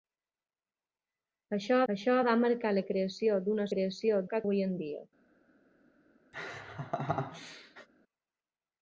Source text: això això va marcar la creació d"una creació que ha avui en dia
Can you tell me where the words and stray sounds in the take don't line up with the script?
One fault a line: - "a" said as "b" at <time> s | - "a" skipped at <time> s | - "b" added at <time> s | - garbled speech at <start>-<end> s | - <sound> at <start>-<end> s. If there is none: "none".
- laugh at 6.3-7.9 s